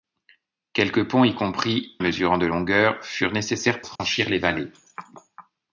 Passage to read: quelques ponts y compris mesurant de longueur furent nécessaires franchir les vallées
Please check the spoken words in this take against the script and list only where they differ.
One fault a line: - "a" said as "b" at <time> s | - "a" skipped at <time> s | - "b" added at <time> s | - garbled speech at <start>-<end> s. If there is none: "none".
none